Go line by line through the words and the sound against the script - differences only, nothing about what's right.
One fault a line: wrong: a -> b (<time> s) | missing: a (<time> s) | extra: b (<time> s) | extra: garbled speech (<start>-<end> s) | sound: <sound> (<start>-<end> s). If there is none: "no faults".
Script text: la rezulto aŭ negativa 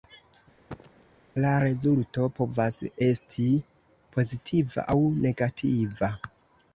sound: cough (0.7-1.0 s)
extra: povas esti pozitiva (2.4 s)